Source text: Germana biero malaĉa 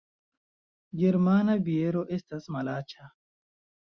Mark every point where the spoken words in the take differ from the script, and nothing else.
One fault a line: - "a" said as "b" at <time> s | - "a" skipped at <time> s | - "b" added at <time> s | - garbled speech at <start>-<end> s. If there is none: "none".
- "estas" added at 2.2 s